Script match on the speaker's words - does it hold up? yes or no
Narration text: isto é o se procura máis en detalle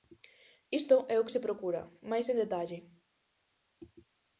no